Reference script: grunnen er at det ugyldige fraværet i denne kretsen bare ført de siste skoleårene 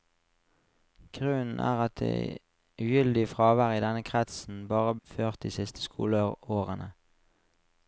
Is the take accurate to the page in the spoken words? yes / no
yes